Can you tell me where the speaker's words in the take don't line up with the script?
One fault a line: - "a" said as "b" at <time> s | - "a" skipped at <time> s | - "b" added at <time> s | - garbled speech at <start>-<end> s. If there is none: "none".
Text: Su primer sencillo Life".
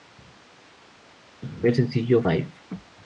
none